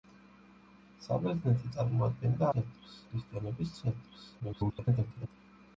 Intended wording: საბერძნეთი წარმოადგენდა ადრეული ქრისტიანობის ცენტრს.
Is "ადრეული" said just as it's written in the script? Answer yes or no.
no